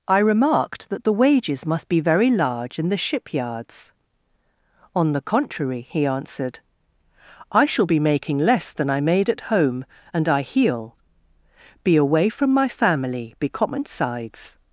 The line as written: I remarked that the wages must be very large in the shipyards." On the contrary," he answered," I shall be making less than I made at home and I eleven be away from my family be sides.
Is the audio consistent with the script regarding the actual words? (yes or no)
no